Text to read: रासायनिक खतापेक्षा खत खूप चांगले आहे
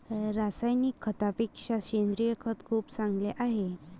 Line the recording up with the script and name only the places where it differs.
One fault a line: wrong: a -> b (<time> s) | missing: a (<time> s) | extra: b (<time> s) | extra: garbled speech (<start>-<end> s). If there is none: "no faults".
extra: सेंद्रिय (1.8 s)